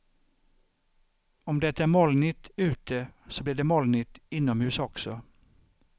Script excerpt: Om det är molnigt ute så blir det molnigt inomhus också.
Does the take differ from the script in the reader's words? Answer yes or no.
no